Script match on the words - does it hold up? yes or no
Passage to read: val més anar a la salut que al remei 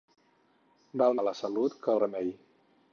no